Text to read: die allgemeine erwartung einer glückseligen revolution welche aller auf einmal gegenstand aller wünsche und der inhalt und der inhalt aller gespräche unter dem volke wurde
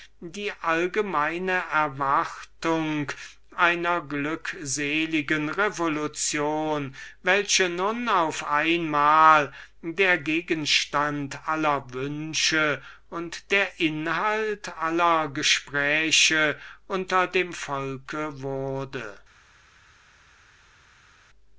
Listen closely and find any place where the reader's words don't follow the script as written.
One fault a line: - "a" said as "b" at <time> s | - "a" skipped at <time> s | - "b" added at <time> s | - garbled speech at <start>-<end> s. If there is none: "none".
- "aller" said as "nun" at 7.7 s
- "der" added at 9.8 s
- "und der inhalt" skipped at 14.8 s